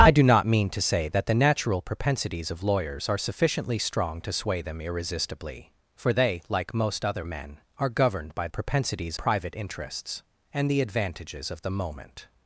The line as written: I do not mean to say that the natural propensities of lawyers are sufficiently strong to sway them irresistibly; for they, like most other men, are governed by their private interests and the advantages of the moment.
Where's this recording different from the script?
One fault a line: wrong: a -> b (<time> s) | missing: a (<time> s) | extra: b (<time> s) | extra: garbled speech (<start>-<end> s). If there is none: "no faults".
wrong: their -> propensities (8.5 s)